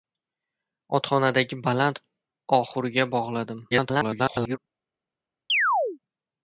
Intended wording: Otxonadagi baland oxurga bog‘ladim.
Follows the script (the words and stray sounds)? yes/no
no